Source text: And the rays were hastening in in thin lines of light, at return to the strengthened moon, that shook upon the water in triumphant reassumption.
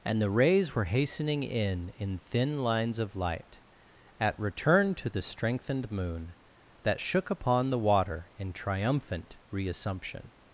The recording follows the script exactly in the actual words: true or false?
true